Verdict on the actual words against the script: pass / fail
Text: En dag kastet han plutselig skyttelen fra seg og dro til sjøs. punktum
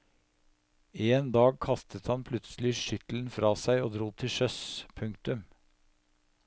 pass